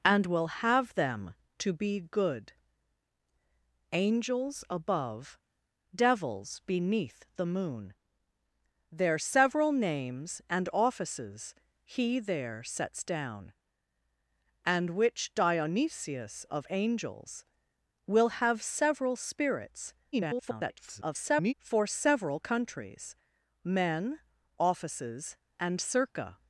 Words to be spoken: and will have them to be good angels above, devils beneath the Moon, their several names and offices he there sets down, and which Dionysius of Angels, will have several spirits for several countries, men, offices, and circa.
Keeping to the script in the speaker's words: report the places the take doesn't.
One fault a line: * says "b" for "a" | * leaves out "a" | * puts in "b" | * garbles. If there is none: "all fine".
* garbles